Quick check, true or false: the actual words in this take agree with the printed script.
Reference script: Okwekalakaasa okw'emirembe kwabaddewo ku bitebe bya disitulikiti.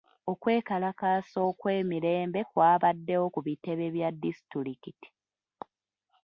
true